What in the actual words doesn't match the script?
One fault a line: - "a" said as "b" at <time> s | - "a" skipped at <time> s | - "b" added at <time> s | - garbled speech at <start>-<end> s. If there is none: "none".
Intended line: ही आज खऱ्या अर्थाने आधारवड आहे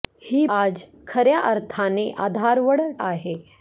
none